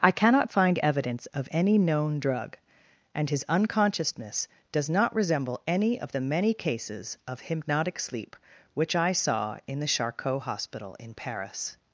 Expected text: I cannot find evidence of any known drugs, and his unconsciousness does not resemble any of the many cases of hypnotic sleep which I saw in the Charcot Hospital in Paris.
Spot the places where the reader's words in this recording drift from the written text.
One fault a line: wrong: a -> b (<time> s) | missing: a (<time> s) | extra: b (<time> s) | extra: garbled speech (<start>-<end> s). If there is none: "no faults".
wrong: drugs -> drug (2.2 s)